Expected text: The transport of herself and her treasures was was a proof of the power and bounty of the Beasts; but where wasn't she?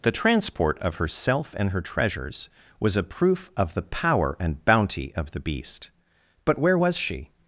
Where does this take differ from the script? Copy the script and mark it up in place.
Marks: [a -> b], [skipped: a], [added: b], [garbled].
The transport of herself and her treasures was [skipped: was] a proof of the power and bounty of the [Beasts; -> Beast] but where [wasn't -> was] she?